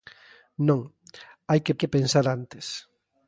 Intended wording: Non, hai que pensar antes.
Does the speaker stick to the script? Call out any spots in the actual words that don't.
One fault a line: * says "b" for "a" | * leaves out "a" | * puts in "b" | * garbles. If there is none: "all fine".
* puts in "que"